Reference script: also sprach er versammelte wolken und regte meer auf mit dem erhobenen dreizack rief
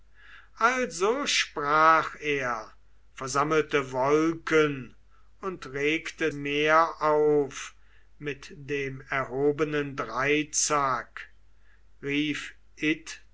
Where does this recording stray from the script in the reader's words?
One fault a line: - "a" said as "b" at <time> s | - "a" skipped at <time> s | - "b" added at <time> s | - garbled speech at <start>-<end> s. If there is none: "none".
none